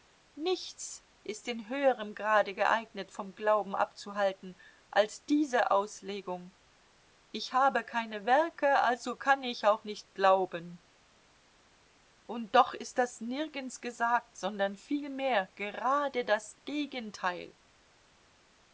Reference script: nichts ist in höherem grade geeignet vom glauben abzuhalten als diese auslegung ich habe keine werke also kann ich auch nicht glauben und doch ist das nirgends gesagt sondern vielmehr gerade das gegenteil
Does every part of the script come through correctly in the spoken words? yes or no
yes